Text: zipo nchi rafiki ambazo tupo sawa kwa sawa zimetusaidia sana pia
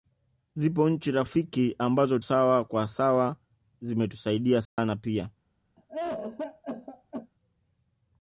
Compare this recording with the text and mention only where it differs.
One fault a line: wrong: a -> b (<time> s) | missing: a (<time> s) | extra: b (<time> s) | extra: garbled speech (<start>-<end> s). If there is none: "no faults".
missing: tupo (2.2 s)